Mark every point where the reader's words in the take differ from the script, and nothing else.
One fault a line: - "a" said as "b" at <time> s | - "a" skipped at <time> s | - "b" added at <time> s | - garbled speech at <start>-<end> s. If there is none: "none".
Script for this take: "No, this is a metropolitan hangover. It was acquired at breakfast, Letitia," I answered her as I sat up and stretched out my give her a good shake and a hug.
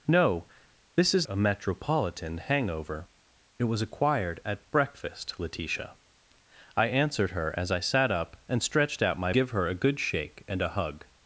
none